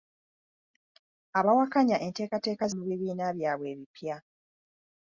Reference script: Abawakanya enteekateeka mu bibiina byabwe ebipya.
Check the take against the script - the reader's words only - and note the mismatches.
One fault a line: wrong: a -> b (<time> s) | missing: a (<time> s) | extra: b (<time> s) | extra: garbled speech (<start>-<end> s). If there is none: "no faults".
no faults